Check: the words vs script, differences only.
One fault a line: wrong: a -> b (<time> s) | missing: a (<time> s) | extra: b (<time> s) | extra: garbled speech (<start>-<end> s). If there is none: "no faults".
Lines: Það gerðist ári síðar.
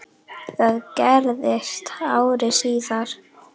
no faults